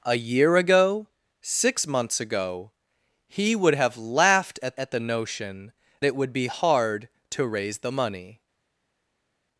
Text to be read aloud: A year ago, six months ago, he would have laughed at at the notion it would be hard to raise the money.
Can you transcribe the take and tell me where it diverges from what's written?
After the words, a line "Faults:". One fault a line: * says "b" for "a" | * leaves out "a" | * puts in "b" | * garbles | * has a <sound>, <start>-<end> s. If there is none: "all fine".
A year ago, six months ago, he would have laughed at at the notion it would be hard to raise the money.
Faults:
all fine